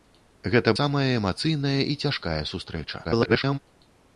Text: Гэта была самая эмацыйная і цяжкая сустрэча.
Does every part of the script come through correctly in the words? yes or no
no